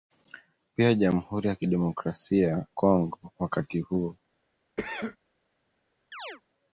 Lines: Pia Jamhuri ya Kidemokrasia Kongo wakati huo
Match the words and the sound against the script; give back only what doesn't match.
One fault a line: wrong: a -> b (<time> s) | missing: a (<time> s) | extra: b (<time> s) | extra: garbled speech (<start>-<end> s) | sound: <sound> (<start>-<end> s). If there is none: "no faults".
sound: cough (4.8-5.2 s)
sound: chirp (6.1-6.4 s)